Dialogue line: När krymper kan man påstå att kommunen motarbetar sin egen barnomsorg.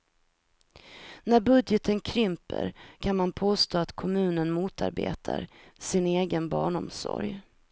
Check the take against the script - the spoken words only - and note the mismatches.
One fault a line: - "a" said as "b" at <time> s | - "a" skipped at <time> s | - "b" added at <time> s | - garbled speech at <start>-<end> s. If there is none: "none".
- "budgeten" added at 1.4 s